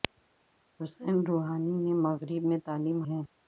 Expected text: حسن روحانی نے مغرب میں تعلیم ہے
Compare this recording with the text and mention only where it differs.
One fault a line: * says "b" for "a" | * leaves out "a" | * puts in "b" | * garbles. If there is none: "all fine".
all fine